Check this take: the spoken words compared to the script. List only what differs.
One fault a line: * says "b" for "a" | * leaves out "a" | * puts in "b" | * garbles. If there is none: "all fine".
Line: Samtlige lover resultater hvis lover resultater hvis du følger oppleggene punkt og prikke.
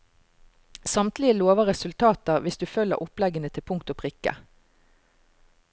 * leaves out "lover resultater hvis"
* puts in "til"